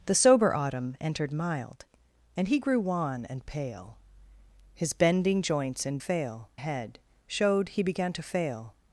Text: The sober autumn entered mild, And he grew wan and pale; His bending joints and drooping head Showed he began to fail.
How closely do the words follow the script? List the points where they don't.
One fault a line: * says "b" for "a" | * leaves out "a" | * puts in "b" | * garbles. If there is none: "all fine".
* says "fail" for "drooping"